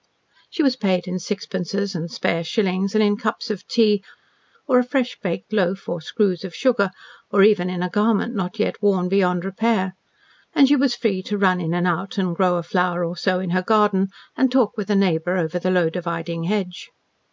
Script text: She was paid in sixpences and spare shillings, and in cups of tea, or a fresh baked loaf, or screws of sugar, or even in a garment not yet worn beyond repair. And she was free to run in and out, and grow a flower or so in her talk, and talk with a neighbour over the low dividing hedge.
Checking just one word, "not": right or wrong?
right